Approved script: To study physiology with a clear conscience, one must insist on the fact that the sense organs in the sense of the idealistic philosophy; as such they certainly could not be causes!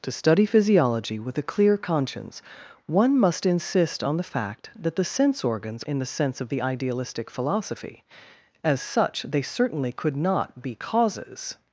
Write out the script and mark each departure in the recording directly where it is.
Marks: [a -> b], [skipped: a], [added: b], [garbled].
To study physiology with a clear conscience, one must insist on the fact that the sense organs in the sense of the idealistic philosophy; as such they certainly could not be causes!